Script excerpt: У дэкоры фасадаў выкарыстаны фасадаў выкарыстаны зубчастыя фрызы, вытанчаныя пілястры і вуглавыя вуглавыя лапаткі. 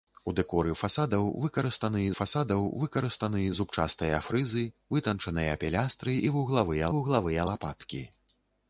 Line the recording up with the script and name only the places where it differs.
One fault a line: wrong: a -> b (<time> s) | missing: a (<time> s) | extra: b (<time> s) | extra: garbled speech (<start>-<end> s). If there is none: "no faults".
no faults